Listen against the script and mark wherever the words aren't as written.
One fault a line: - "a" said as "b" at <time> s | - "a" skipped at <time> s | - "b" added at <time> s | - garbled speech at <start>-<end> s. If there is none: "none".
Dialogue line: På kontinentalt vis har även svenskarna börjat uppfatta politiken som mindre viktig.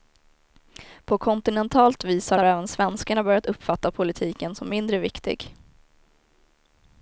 - "har" added at 2.3 s